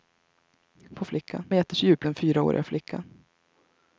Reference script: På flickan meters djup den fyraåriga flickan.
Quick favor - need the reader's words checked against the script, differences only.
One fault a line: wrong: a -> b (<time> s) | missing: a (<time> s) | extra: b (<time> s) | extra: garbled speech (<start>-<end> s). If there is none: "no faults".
no faults